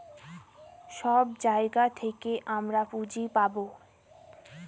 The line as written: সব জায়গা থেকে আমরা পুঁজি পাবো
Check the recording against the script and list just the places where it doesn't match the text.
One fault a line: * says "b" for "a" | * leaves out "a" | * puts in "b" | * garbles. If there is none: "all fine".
all fine